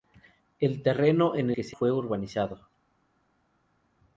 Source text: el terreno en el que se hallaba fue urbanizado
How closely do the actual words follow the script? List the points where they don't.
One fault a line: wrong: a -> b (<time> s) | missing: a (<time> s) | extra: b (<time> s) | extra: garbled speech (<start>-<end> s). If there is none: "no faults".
missing: el (1.5 s)
missing: hallaba (1.8 s)